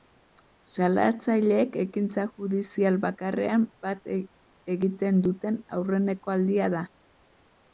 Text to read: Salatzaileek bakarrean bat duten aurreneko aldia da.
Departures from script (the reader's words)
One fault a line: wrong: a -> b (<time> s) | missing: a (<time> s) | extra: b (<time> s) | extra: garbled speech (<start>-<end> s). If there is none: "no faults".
extra: ekintza judizial (1.8 s)
extra: egiten (4.8 s)